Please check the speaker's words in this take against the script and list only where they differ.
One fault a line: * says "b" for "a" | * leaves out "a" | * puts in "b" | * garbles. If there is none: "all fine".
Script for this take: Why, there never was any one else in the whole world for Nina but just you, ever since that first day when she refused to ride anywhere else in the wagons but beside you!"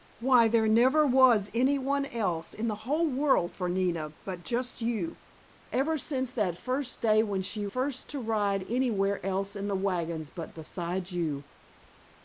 * says "first" for "refused"